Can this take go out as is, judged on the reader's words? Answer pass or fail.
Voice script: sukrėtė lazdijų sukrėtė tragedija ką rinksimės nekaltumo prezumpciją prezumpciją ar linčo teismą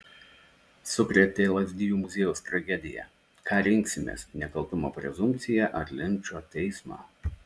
fail